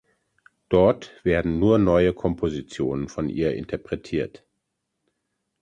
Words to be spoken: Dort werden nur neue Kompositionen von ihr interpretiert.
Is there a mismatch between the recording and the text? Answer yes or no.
no